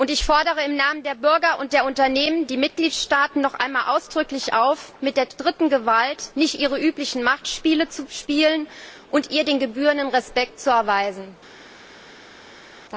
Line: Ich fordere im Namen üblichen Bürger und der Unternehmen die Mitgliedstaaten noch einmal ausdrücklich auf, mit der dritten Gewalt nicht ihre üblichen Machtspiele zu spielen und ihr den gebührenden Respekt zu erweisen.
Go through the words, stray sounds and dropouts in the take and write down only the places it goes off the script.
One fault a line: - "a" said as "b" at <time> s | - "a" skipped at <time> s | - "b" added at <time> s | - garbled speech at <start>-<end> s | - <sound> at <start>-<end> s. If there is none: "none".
- "üblichen" said as "der" at 1.0 s